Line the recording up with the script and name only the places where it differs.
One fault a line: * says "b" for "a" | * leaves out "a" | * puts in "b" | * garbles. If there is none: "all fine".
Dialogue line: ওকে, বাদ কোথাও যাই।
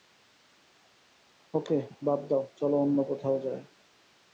* puts in "দাও চলো অন্য"